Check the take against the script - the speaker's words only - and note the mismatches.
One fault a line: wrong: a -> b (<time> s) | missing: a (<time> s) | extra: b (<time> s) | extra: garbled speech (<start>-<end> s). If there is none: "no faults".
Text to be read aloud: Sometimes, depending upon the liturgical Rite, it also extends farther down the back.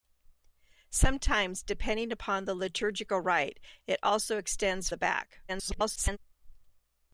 missing: farther down (4.9 s)
extra: garbled speech (5.5-6.2 s)